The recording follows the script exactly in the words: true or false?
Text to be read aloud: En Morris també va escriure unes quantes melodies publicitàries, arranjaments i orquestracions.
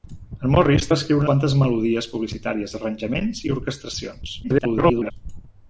false